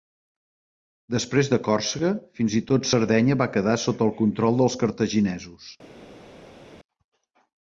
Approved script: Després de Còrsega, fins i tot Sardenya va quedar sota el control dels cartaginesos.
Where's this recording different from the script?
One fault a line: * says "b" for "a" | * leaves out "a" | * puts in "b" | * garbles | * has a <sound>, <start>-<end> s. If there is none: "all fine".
all fine